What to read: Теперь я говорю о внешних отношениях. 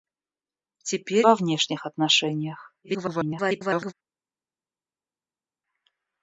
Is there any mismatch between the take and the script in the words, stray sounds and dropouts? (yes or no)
yes